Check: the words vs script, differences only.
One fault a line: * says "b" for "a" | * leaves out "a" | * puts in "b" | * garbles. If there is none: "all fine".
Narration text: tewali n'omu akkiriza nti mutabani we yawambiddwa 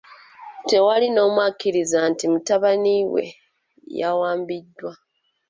all fine